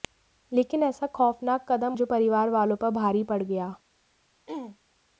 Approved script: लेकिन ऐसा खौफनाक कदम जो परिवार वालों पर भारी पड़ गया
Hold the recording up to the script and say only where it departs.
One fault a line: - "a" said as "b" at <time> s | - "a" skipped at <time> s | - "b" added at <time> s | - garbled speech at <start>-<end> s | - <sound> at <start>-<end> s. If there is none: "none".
- throat clearing at 4.5-4.8 s